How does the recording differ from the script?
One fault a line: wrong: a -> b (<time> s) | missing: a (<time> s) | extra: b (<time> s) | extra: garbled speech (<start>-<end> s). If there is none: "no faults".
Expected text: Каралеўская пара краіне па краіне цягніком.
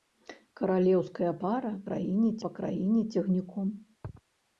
no faults